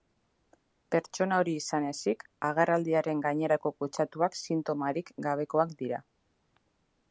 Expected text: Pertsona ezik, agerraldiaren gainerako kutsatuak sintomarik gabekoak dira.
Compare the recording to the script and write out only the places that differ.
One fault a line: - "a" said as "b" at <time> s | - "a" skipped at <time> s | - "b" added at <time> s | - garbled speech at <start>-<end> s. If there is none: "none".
- "hori izan" added at 1.4 s